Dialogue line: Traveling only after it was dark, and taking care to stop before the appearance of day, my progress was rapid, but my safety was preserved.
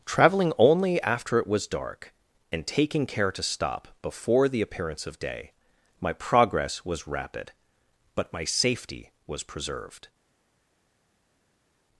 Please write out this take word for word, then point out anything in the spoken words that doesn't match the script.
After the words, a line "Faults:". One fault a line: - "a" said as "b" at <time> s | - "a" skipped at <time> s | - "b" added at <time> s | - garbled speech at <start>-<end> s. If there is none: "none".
Traveling only after it was dark, and taking care to stop before the appearance of day, my progress was rapid, but my safety was preserved.
Faults:
none